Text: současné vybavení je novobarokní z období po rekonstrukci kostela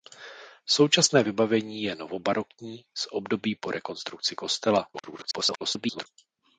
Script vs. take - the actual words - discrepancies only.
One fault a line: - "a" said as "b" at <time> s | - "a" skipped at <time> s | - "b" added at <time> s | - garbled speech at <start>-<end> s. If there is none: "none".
- garbled speech at 4.9-6.1 s